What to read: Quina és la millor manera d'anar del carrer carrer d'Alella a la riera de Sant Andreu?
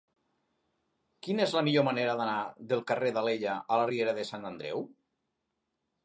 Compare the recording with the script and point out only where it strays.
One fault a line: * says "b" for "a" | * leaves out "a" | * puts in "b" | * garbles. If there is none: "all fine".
* leaves out "carrer"